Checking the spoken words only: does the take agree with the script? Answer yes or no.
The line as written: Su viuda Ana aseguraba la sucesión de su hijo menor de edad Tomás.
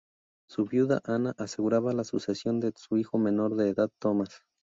yes